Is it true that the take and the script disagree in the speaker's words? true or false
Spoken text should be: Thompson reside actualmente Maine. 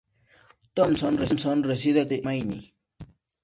false